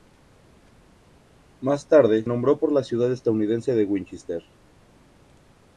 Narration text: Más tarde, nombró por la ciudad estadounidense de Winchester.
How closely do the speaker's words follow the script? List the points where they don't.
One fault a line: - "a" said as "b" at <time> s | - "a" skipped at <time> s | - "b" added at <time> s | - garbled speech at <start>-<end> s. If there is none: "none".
none